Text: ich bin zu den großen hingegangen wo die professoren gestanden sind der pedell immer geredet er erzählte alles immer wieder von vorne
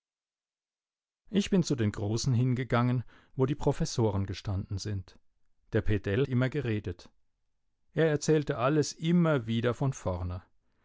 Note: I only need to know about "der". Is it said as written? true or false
true